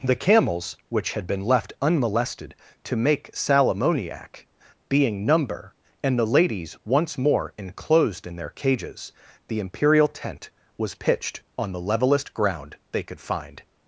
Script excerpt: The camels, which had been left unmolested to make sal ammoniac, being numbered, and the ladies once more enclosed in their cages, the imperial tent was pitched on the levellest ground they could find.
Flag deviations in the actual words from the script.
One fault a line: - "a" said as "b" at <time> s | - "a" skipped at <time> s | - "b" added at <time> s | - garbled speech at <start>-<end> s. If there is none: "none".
- "numbered" said as "number" at 5.2 s